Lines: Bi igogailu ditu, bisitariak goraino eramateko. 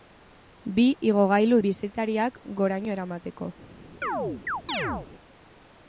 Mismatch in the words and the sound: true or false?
true